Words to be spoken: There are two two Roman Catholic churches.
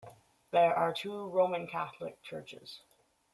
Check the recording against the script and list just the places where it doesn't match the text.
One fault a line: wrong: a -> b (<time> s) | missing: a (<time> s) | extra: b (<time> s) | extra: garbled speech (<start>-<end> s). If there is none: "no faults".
missing: two (1.3 s)